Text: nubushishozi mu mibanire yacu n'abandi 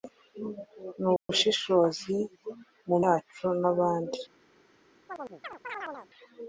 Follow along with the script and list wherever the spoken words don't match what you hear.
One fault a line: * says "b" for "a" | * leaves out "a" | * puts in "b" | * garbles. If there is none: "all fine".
* leaves out "mibanire"